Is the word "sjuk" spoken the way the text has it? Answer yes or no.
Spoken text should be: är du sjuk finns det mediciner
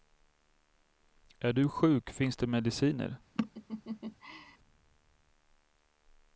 yes